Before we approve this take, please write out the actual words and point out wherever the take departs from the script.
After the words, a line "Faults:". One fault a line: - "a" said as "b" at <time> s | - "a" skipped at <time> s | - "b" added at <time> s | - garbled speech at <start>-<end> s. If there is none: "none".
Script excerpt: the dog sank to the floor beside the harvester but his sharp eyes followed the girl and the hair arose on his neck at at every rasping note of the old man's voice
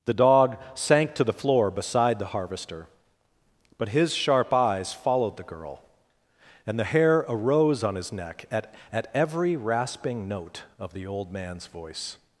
the dog sank to the floor beside the harvester but his sharp eyes followed the girl and the hair arose on his neck at at every rasping note of the old man's voice
Faults:
none